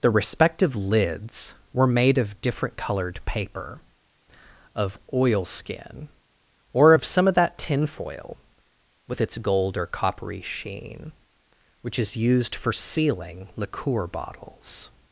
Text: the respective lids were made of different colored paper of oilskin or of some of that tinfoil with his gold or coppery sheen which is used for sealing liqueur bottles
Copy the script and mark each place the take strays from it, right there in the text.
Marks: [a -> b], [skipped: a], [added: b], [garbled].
the respective lids were made of different colored paper of oilskin or of some of that tinfoil with [his -> its] gold or coppery sheen which is used for sealing liqueur bottles